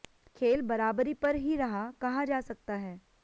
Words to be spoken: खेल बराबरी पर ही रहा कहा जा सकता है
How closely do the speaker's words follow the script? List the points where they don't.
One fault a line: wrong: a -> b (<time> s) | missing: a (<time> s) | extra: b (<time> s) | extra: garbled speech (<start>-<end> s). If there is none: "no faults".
no faults